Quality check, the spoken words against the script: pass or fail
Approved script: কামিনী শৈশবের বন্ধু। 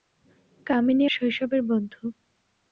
pass